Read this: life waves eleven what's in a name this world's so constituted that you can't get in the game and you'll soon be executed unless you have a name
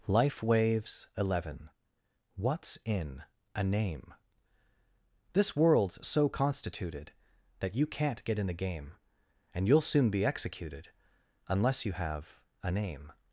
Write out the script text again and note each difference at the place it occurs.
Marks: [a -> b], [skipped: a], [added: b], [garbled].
life waves eleven what's in a name this world's so constituted that you can't get in the game and you'll soon be executed unless you have a name